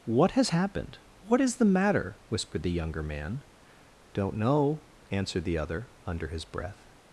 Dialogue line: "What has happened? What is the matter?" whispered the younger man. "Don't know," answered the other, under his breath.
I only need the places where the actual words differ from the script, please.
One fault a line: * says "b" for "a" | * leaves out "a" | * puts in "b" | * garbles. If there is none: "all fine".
all fine